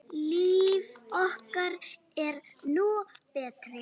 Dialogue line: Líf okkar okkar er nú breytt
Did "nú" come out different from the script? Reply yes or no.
no